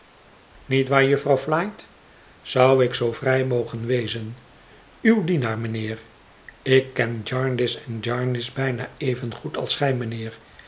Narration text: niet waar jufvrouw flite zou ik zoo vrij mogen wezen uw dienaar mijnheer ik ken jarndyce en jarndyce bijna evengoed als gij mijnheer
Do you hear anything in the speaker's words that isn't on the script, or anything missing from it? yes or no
no